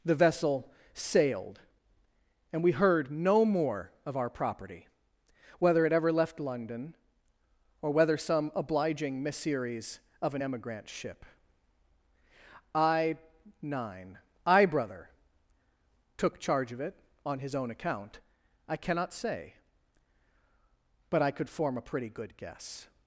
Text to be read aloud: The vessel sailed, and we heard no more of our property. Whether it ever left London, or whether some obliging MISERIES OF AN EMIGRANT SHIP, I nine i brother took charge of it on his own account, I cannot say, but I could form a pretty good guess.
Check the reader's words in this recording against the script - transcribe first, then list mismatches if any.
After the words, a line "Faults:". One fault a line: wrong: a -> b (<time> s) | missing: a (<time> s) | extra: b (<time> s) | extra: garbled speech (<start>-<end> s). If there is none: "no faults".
The vessel sailed, and we heard no more of our property. Whether it ever left London, or whether some obliging MISERIES OF AN EMIGRANT SHIP, I nine i brother took charge of it on his own account, I cannot say, but I could form a pretty good guess.
Faults:
no faults